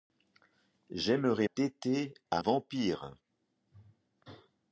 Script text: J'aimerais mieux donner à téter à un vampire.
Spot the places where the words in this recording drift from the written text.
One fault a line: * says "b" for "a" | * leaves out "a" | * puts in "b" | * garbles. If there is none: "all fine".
* leaves out "mieux donner à"
* leaves out "un"